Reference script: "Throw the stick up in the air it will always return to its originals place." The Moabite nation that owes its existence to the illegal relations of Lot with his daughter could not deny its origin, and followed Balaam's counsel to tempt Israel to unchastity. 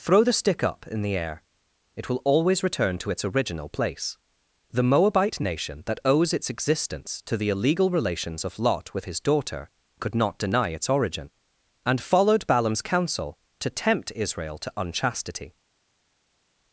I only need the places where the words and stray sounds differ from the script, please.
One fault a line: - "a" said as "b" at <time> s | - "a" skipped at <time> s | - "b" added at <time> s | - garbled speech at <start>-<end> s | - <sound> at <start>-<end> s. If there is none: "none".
- "originals" said as "original" at 3.2 s